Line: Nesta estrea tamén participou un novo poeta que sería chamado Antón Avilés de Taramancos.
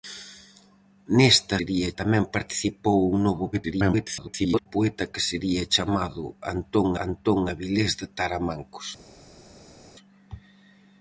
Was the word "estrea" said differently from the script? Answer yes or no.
yes